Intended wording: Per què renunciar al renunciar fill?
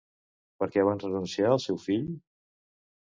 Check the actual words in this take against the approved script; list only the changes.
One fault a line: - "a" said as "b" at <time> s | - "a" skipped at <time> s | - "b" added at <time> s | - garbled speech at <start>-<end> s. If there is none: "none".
- "van" added at 0.9 s
- "renunciar" said as "seu" at 1.6 s